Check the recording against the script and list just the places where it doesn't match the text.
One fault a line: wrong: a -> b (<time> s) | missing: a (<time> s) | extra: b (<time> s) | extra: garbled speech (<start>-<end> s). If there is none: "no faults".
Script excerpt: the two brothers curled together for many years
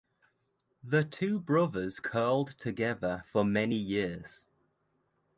no faults